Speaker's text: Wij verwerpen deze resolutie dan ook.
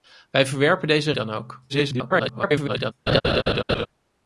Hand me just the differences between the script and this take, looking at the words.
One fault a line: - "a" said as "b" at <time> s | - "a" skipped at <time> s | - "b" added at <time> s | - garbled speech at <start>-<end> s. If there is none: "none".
- "resolutie" skipped at 1.1 s
- garbled speech at 1.7-2.9 s